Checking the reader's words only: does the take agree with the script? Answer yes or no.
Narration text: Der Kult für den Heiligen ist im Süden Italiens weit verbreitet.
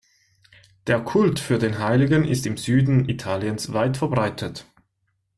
yes